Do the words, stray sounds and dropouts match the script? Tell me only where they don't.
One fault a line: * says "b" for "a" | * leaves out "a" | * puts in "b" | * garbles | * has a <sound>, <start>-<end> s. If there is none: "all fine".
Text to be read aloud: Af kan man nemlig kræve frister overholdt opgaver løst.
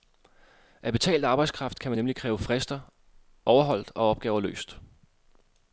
* puts in "betalt arbejdskraft"
* puts in "og"